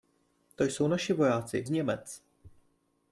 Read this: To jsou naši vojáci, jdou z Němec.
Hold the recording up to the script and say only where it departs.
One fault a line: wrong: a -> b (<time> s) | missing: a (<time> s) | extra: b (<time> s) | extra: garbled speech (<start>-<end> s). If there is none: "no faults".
missing: jdou (1.6 s)